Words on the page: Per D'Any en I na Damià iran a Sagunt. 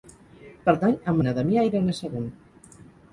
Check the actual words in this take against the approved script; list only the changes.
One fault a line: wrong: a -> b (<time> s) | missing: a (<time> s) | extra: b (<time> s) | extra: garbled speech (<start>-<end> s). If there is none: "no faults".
no faults